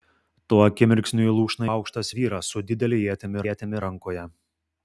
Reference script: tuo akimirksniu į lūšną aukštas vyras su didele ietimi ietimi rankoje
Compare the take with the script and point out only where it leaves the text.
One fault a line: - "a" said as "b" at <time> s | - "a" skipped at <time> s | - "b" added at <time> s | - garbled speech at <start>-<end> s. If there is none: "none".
none